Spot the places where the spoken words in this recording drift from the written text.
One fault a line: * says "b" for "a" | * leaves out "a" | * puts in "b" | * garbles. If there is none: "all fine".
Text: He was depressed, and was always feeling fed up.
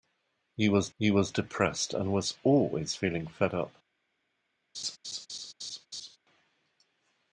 * puts in "he was"